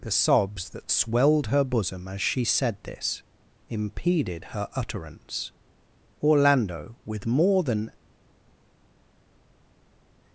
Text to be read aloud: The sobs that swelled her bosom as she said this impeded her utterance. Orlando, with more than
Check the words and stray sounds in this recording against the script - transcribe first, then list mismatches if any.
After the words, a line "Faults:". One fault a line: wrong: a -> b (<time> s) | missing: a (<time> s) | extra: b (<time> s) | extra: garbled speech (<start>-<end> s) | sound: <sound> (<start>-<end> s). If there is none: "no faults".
The sobs that swelled her bosom as she said this impeded her utterance. Orlando, with more than
Faults:
no faults